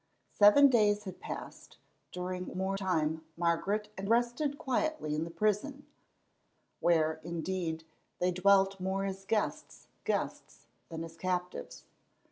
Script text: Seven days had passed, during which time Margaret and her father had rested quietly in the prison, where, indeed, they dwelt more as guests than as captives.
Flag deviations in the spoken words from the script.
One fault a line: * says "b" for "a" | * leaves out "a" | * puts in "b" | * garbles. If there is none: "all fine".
* says "more" for "which"
* leaves out "her father had"
* puts in "guests"